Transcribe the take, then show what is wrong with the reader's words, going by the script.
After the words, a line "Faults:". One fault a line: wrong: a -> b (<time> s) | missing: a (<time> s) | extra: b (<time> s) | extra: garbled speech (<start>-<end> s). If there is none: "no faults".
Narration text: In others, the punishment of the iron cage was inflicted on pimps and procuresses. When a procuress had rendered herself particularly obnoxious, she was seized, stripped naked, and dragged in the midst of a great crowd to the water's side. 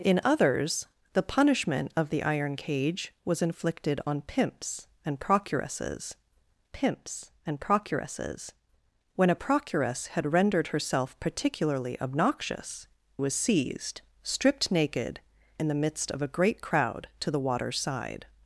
In others, the punishment of the iron cage was inflicted on pimps and procuresses pimps and procuresses. When a procuress had rendered herself particularly obnoxious, was seized, stripped naked, in the midst of a great crowd to the water's side.
Faults:
extra: pimps and procuresses (6.7 s)
missing: she (12.9 s)
missing: and dragged (15.2 s)